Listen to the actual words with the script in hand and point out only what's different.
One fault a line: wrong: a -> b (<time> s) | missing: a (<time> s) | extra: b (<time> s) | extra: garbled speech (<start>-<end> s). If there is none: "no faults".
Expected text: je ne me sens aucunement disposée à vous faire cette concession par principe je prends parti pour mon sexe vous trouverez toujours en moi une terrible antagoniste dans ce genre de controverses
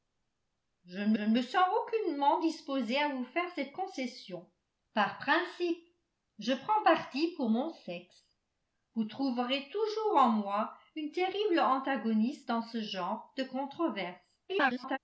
extra: ne (1.2 s)
extra: garbled speech (14.5-15.0 s)